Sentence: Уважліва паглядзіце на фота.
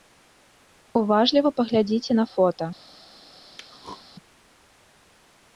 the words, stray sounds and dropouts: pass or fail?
fail